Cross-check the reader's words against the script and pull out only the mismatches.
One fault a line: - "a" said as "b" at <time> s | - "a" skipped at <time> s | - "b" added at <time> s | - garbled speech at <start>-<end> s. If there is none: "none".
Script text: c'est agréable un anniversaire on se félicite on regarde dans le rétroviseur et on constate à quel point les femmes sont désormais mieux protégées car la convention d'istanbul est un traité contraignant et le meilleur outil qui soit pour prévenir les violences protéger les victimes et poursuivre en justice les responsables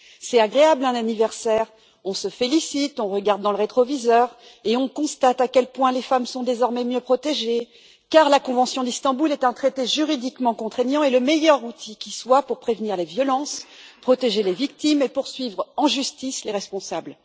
- "juridiquement" added at 9.9 s